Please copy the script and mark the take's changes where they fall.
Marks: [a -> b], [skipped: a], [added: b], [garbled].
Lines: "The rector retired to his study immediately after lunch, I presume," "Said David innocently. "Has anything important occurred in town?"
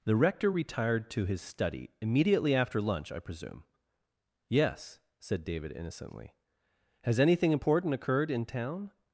"The rector retired to his study immediately after lunch, I presume," [added: Yes] "Said David innocently. "Has anything important occurred in town?"